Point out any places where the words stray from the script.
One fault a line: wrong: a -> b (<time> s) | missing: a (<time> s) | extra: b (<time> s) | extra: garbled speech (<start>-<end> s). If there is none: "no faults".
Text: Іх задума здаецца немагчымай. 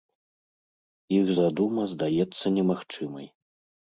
no faults